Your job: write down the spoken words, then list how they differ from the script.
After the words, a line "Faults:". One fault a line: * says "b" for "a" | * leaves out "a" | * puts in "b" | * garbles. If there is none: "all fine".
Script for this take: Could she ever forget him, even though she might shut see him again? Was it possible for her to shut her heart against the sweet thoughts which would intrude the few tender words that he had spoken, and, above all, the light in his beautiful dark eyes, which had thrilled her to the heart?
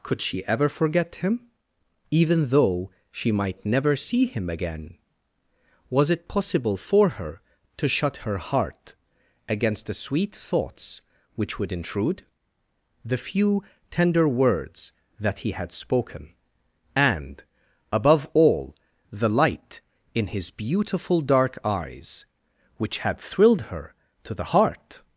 Could she ever forget him, even though she might never see him again? Was it possible for her to shut her heart against the sweet thoughts which would intrude the few tender words that he had spoken, and, above all, the light in his beautiful dark eyes, which had thrilled her to the heart?
Faults:
* says "never" for "shut"